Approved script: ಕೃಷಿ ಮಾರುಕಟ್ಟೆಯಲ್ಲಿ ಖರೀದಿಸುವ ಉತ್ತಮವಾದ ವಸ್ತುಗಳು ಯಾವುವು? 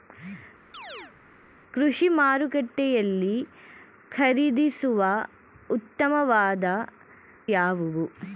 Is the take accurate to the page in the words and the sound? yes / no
no